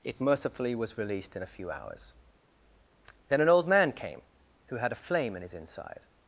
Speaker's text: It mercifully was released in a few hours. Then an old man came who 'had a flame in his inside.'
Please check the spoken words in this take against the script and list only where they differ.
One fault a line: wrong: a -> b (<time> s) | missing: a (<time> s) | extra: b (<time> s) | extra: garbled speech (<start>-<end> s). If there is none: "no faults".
no faults